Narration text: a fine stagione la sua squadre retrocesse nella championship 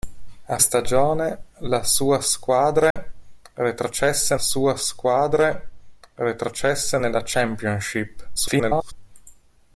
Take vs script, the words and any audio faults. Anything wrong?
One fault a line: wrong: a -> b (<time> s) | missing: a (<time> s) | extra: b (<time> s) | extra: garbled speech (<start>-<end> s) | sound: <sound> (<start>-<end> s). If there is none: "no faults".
missing: fine (0.6 s)
sound: dropout (2.9-3.0 s)
extra: sua squadre retrocesse (4.4 s)
extra: garbled speech (8.4-8.9 s)